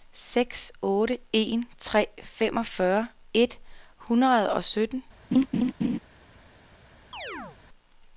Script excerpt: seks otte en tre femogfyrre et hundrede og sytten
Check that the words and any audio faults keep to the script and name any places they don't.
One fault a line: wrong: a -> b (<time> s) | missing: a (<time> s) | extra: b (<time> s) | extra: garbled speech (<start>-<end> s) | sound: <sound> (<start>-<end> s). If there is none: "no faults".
sound: laugh (5.3-6.0 s)
sound: chirp (7.1-7.6 s)